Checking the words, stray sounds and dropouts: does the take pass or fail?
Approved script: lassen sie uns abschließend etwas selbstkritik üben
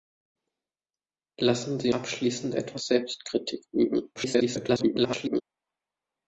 fail